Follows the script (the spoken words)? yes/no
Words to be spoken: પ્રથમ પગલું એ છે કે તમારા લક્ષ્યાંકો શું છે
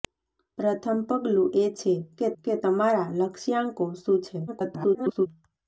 no